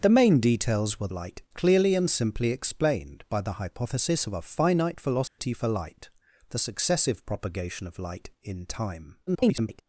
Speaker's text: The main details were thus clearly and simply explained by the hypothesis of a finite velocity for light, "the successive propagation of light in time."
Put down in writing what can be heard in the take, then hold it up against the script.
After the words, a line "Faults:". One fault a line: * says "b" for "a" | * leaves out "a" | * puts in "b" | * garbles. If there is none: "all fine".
The main details were light clearly and simply explained by the hypothesis of a finite velocity for light, "the successive propagation of light in time." [garbled]
Faults:
* says "light" for "thus"
* garbles